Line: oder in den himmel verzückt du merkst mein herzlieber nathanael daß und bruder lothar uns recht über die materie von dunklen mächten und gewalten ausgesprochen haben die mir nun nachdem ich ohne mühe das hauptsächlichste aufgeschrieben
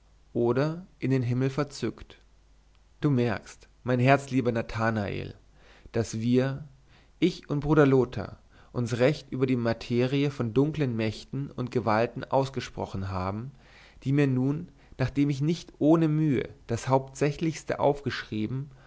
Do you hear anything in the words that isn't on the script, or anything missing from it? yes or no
yes